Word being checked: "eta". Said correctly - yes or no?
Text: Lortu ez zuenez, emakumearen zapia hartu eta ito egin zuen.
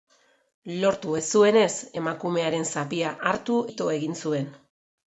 no